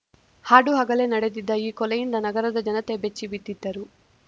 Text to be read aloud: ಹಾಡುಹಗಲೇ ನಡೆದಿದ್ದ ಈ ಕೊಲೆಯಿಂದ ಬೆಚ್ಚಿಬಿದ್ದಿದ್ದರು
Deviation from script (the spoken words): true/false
true